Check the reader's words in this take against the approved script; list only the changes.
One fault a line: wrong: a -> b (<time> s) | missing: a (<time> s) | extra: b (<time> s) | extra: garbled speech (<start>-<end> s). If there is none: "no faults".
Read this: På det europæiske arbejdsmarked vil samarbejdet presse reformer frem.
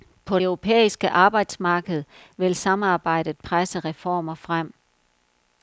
missing: det (0.4 s)